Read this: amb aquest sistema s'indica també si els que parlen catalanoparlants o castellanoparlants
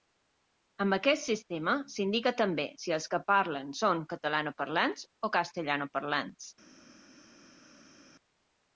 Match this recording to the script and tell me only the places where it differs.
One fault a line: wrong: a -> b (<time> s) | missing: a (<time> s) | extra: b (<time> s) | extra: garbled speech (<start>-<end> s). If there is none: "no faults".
extra: són (3.8 s)